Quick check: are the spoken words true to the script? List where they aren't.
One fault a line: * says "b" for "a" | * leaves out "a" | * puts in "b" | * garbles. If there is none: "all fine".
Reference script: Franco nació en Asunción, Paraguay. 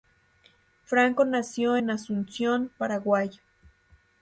all fine